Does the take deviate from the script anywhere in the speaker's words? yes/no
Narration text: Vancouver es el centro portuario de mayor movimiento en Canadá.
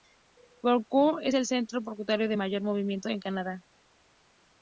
no